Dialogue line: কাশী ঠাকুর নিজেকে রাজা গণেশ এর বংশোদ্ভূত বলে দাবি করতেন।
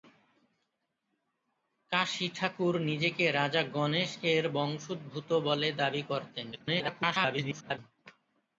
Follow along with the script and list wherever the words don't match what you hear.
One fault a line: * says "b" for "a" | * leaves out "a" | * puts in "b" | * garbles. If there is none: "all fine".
* garbles